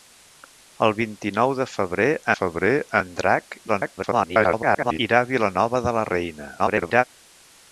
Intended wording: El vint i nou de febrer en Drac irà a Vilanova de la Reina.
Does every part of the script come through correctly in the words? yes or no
no